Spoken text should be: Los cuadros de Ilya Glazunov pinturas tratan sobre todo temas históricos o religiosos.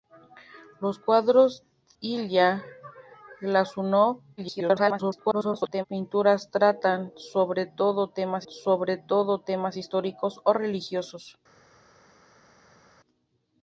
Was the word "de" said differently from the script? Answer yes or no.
yes